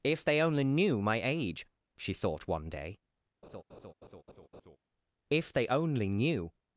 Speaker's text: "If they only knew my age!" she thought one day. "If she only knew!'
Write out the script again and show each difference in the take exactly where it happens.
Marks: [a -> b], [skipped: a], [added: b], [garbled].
"If they only knew my age!" she thought one day. "If [she -> they] only knew!'